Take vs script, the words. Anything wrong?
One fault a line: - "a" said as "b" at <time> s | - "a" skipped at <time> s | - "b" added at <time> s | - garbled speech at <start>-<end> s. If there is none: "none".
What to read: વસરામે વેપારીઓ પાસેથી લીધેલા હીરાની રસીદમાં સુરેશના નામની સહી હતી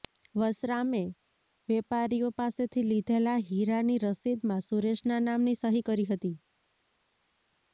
- "કરી" added at 5.9 s